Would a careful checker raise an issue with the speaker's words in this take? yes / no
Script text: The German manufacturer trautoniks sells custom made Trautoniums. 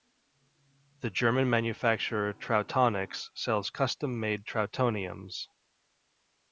no